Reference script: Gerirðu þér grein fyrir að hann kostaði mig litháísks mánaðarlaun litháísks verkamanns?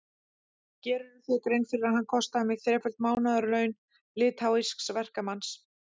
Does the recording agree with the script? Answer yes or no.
no